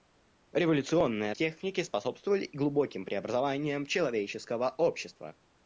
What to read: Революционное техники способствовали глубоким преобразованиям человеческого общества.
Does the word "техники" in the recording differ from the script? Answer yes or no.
no